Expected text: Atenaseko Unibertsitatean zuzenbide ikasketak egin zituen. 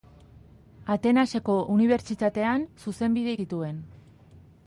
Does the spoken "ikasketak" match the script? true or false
false